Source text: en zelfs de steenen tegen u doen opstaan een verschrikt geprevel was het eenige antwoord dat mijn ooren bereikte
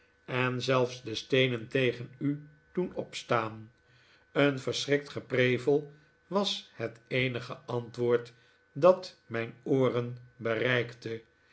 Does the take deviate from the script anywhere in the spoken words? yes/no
no